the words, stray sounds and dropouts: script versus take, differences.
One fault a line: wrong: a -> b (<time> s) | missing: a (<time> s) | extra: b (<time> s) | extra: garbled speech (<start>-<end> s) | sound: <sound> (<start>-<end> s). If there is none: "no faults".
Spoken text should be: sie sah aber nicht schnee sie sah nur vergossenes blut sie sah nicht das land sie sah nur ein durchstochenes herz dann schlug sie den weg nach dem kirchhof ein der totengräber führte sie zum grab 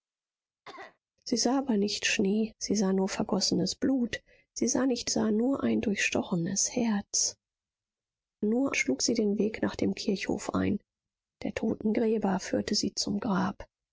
sound: cough (0.6-1.0 s)
missing: das land sie (5.1 s)
wrong: dann -> nur (8.4 s)